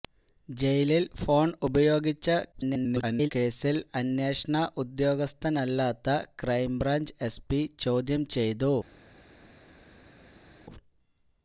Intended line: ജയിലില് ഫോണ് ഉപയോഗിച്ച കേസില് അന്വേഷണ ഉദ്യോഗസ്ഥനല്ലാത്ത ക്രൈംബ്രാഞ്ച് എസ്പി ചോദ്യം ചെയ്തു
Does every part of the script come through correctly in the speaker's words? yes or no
no